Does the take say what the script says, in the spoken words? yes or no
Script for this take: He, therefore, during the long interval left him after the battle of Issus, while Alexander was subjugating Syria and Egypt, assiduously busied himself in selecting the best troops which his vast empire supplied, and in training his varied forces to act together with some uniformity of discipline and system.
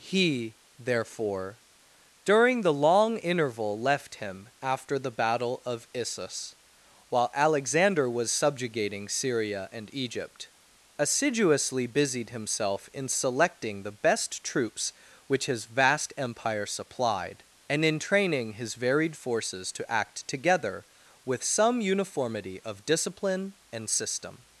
yes